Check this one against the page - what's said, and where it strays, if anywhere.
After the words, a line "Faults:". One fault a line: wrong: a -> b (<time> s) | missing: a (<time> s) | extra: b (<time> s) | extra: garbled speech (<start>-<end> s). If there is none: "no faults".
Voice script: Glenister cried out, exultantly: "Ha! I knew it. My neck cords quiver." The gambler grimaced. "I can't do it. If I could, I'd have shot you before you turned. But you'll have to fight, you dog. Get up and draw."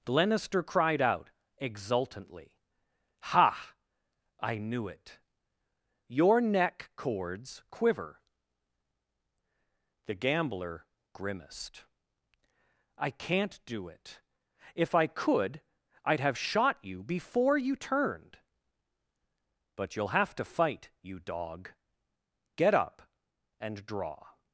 Glenister cried out, exultantly: "Ha! I knew it. Your neck cords quiver." The gambler grimaced. "I can't do it. If I could, I'd have shot you before you turned. But you'll have to fight, you dog. Get up and draw."
Faults:
wrong: My -> Your (6.1 s)